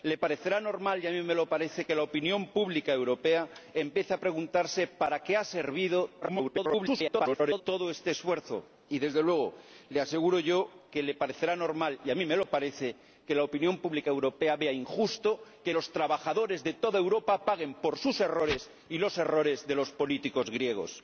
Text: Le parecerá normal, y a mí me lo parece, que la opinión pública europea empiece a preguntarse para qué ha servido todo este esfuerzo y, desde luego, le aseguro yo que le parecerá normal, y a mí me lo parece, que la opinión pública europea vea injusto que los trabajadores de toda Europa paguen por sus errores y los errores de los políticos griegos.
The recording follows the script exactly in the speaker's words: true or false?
false